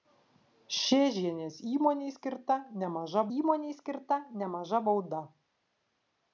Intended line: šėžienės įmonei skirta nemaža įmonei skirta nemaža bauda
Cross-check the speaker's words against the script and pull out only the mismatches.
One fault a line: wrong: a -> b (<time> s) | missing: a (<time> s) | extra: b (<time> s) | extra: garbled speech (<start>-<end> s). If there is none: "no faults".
no faults